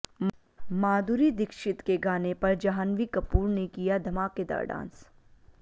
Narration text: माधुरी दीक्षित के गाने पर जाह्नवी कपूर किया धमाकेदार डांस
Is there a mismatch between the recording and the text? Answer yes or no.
yes